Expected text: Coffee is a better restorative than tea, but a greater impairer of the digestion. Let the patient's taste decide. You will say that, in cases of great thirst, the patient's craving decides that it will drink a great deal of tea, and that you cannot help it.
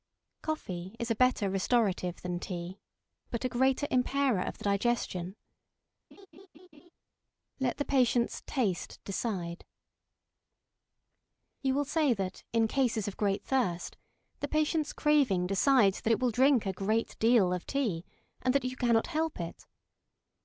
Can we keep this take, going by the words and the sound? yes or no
no